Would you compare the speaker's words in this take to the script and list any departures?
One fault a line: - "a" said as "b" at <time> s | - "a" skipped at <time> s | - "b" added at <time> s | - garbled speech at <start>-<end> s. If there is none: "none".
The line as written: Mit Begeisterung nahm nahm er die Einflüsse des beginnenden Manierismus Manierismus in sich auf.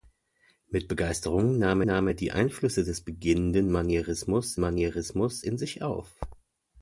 none